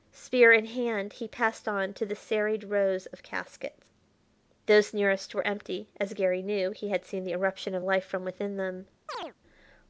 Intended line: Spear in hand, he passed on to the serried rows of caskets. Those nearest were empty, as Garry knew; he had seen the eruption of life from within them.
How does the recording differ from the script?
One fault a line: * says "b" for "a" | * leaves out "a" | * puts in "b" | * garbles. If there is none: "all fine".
all fine